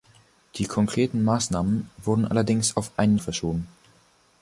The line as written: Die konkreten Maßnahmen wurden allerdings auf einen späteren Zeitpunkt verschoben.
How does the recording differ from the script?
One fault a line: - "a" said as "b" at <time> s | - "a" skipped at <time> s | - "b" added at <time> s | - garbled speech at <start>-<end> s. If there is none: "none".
- "späteren Zeitpunkt" skipped at 3.2 s